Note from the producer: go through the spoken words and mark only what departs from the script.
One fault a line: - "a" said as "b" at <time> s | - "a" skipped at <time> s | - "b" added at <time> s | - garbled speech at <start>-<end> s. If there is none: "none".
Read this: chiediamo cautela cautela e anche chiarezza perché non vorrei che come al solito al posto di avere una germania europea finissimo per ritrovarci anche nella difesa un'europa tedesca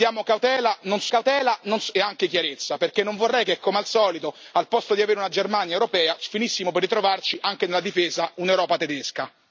none